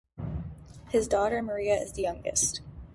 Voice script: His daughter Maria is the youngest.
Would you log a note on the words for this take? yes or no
no